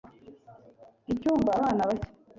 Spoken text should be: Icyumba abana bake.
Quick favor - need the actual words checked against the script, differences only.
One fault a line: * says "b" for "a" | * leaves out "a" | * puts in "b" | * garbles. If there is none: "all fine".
all fine